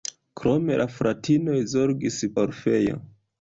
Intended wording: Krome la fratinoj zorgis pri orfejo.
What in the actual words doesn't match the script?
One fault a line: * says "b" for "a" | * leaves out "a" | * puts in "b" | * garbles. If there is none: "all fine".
* leaves out "pri"